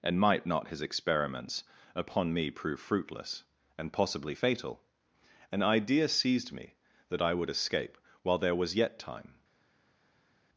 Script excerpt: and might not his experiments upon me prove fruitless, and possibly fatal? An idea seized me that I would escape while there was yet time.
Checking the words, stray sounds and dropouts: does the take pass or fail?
pass